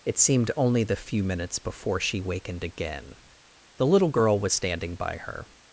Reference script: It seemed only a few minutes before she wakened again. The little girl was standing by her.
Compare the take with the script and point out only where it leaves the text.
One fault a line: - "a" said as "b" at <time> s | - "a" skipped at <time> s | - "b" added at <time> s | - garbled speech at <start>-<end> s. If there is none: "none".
- "a" said as "the" at 0.8 s